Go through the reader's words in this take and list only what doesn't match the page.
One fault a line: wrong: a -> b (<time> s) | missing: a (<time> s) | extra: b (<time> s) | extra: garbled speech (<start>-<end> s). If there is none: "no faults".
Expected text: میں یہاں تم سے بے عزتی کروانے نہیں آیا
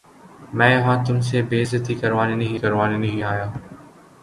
extra: کروانے نہیں (2.5 s)